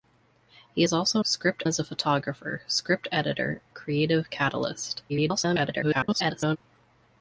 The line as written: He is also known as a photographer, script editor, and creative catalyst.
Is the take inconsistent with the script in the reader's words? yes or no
yes